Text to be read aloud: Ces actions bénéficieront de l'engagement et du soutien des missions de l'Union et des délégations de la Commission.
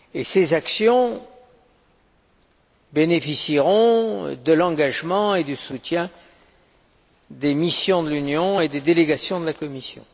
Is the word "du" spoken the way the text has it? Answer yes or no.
yes